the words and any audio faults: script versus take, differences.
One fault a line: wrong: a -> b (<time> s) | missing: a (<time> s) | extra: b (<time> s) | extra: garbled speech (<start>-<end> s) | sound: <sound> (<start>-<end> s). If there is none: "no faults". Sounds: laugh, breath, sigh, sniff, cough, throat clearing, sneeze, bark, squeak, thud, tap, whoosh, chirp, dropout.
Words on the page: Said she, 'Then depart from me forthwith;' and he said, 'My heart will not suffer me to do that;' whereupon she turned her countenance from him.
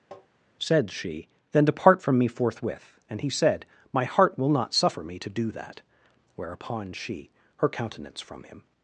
sound: tap (0.1-0.3 s)
missing: turned (7.3 s)